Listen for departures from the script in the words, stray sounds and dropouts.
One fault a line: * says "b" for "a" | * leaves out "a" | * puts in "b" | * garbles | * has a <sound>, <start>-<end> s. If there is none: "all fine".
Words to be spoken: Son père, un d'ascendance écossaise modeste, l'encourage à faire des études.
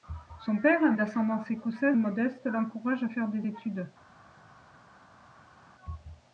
all fine